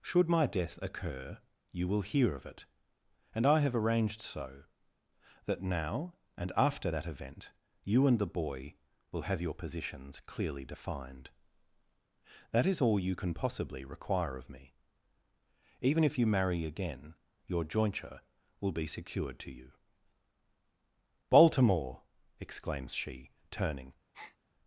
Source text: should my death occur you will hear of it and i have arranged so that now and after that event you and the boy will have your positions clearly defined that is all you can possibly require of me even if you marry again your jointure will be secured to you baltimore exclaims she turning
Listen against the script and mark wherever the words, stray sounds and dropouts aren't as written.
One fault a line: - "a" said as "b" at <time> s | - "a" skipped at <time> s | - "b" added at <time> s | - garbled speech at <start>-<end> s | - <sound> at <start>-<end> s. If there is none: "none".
- breath at 24.1-24.4 s